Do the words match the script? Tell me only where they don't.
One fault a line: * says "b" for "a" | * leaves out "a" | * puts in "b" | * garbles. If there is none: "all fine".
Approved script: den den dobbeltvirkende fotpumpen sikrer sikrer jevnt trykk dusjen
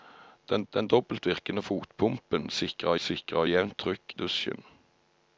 all fine